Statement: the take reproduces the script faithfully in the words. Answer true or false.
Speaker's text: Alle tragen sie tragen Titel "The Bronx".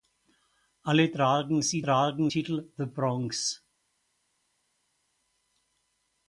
true